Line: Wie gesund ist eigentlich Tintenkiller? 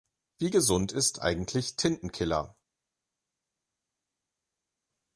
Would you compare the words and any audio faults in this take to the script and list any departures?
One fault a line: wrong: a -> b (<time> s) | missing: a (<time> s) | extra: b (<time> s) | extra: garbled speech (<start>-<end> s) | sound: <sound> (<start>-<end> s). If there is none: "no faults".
no faults